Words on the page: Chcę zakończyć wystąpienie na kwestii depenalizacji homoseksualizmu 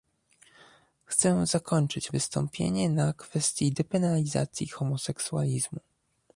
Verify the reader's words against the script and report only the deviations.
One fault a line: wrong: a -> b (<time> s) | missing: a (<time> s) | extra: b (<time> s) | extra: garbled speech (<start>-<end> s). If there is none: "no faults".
no faults